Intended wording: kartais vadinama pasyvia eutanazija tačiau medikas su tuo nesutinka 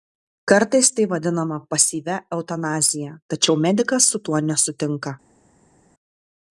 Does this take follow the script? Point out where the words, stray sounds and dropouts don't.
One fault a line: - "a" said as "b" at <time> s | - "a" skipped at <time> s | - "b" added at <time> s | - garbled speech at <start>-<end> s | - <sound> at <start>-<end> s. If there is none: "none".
- "tai" added at 0.9 s